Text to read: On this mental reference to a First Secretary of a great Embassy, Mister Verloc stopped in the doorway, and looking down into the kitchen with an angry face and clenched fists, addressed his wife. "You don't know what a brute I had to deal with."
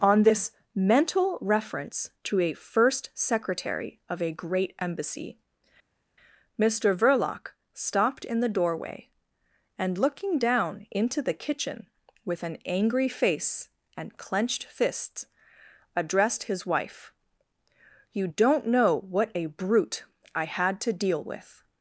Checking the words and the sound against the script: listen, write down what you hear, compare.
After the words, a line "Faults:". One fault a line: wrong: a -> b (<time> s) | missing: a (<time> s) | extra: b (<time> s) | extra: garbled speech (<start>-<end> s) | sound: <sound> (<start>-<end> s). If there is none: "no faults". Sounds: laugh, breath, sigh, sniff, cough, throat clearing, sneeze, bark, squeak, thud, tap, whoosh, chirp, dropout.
On this mental reference to a First Secretary of a great Embassy, Mister Verloc stopped in the doorway, and looking down into the kitchen with an angry face and clenched fists, addressed his wife. "You don't know what a brute I had to deal with."
Faults:
no faults